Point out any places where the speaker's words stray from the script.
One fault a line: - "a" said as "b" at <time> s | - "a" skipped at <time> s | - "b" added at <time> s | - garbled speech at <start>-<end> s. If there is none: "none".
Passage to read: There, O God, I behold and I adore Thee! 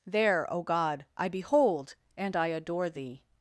none